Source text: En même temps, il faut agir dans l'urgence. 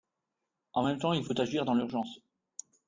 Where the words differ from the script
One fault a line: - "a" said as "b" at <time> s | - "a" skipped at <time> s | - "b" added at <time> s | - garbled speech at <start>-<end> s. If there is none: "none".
none